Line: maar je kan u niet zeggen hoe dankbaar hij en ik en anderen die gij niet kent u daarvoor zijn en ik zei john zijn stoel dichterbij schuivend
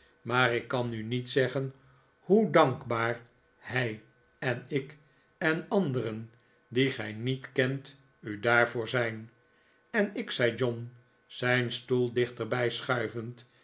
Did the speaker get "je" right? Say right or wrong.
wrong